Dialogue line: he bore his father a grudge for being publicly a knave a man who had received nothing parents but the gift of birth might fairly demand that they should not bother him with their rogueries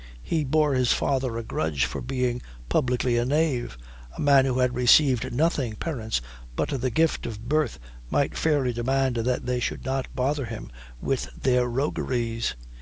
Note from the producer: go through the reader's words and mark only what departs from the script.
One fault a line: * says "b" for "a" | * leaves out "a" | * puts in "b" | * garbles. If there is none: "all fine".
all fine